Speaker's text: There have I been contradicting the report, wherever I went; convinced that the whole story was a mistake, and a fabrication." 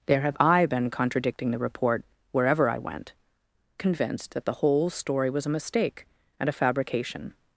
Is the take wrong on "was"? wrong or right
right